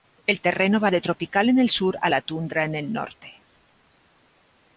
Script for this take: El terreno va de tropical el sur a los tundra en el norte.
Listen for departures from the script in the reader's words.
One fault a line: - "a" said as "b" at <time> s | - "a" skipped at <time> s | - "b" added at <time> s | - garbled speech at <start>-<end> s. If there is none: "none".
- "en" added at 1.5 s
- "los" said as "la" at 2.1 s